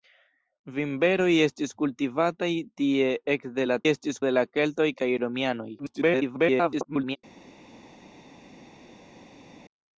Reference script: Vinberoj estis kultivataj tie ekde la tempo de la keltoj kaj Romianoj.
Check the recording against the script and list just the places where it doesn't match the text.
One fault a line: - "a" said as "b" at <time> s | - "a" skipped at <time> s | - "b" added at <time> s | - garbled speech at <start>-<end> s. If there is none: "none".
- "tempo" said as "estis" at 3.9 s
- garbled speech at 5.8-7.2 s